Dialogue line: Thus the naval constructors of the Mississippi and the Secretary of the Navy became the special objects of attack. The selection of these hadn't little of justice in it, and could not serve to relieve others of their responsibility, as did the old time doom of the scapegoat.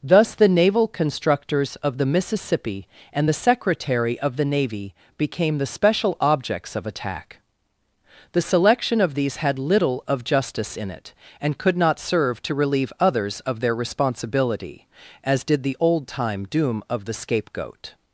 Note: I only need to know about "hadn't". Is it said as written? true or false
false